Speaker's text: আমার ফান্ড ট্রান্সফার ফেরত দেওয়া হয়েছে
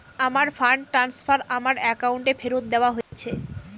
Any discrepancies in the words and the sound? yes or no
yes